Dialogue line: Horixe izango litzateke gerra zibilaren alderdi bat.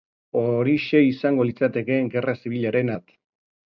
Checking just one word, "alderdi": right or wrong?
wrong